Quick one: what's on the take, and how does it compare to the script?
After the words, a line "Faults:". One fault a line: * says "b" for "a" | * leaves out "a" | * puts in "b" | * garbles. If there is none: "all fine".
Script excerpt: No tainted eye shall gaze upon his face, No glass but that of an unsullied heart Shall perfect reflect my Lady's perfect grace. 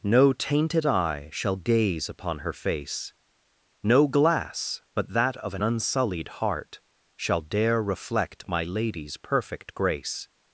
No tainted eye shall gaze upon her face, No glass but that of an unsullied heart Shall dare reflect my Lady's perfect grace.
Faults:
* says "her" for "his"
* says "dare" for "perfect"